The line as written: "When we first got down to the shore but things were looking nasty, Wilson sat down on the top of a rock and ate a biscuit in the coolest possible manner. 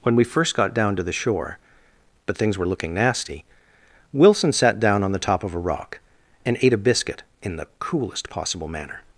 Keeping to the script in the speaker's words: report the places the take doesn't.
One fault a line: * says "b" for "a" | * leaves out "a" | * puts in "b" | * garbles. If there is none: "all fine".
all fine